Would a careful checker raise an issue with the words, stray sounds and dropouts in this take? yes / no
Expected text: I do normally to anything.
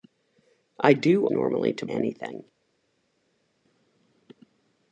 no